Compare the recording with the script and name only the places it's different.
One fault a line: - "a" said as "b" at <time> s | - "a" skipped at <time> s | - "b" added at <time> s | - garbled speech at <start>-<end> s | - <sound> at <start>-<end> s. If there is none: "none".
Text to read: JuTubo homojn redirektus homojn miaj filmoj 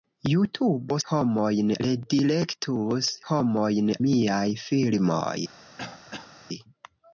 - throat clearing at 5.8-6.3 s